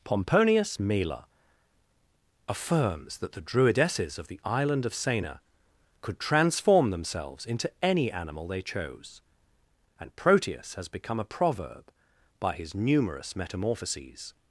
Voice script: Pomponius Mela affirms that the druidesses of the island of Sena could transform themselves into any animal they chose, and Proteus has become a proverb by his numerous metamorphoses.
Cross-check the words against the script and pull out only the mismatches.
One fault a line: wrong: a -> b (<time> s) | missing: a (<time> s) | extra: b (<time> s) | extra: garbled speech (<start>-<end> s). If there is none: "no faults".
no faults